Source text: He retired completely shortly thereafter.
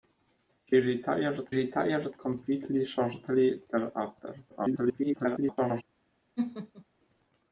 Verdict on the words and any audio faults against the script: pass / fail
fail